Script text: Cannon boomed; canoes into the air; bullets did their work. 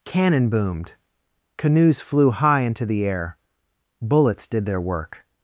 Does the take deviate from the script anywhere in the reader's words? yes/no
yes